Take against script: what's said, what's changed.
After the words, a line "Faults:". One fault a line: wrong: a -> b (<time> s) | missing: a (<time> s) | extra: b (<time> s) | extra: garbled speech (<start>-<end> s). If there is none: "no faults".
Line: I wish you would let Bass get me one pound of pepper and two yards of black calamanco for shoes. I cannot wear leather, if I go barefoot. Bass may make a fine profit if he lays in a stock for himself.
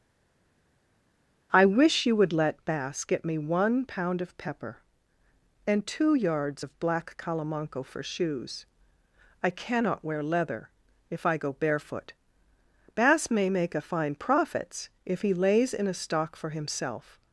I wish you would let Bass get me one pound of pepper and two yards of black calamanco for shoes. I cannot wear leather, if I go barefoot. Bass may make a fine profits if he lays in a stock for himself.
Faults:
wrong: profit -> profits (14.1 s)